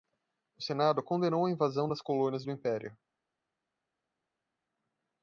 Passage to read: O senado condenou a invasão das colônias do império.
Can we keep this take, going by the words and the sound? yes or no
yes